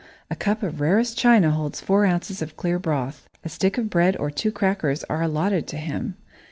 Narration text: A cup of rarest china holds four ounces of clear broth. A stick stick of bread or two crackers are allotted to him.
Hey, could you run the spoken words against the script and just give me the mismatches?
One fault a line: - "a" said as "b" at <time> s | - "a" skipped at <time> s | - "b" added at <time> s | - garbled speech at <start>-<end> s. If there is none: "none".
- "stick" skipped at 3.8 s